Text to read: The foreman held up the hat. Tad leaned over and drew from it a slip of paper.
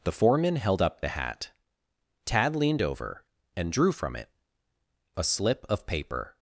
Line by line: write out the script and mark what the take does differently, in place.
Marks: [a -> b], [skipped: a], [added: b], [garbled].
The foreman held up the hat. Tad leaned over and drew from it a slip of paper.